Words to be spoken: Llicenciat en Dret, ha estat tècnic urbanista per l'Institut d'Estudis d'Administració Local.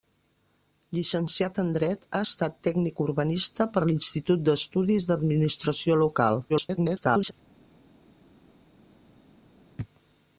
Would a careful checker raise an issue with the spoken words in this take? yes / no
yes